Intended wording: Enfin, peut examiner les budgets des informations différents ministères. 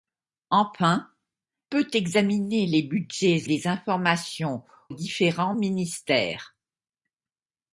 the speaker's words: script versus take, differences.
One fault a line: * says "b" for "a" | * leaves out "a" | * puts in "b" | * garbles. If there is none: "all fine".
all fine